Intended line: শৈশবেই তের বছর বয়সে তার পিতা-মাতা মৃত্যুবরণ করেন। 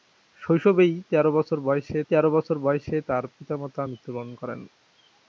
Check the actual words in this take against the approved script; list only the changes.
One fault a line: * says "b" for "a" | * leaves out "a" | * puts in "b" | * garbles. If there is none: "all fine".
* puts in "তের বছর বয়সে"